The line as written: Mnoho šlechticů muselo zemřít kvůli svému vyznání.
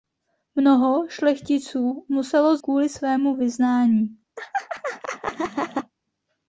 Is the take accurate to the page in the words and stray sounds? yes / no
no